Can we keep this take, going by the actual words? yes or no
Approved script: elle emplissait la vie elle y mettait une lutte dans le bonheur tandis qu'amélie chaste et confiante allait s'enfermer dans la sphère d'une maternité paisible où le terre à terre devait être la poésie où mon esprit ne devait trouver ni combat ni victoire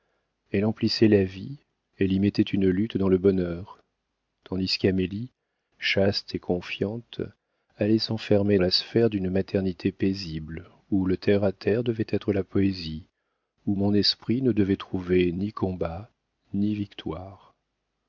no